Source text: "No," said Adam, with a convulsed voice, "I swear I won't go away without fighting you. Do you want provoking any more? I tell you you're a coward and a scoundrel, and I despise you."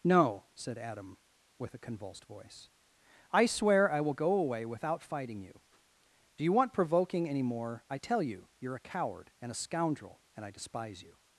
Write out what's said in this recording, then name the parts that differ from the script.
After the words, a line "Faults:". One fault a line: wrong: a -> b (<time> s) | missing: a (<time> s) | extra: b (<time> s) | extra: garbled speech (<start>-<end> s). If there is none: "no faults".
"No," said Adam, with a convulsed voice, "I swear I will go away without fighting you. Do you want provoking any more? I tell you you're a coward and a scoundrel, and I despise you."
Faults:
wrong: won't -> will (4.0 s)